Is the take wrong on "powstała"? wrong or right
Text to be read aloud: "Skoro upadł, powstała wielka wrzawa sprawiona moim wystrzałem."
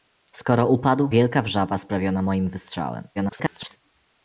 wrong